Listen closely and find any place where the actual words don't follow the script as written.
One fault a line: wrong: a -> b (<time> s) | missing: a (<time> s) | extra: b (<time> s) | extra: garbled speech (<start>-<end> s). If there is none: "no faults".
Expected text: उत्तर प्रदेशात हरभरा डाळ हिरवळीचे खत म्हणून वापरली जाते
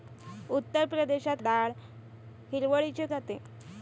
missing: हरभरा (1.4 s)
missing: खत म्हणून वापरली (3.1 s)